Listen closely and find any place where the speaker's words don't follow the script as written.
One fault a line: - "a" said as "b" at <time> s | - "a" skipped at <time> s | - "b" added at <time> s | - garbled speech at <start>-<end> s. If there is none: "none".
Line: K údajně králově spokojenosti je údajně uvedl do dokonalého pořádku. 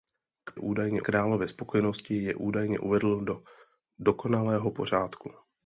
none